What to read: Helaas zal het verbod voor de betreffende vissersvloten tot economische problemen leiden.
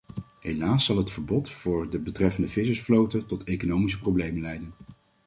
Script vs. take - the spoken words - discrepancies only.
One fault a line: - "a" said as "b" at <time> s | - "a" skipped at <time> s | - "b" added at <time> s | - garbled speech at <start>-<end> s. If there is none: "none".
none